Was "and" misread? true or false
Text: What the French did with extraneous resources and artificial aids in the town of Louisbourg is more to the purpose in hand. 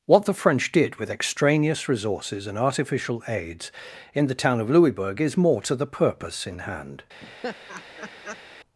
false